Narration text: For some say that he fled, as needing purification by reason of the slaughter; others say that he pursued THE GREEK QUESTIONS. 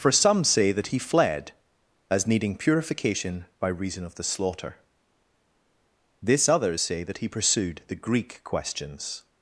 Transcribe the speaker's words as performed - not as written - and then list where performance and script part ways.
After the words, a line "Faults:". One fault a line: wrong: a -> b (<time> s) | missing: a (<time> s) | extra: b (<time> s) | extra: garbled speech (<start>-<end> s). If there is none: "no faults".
For some say that he fled, as needing purification by reason of the slaughter; this others say that he pursued THE GREEK QUESTIONS.
Faults:
extra: this (6.2 s)